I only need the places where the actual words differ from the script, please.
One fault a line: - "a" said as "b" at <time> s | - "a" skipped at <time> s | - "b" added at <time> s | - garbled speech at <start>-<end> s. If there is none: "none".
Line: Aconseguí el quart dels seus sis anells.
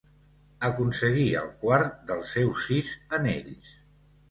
none